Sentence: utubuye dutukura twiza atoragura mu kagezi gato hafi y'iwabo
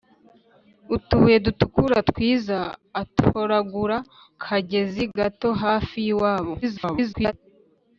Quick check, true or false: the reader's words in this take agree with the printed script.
false